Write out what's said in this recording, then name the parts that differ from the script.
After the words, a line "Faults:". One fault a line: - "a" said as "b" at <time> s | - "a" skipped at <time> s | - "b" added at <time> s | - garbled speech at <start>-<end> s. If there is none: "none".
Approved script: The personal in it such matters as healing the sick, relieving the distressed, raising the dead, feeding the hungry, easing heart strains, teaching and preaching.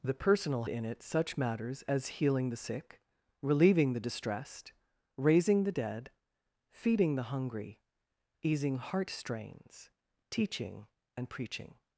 The personal in it such matters as healing the sick, relieving the distressed, raising the dead, feeding the hungry, easing heart strains, teaching and preaching.
Faults:
none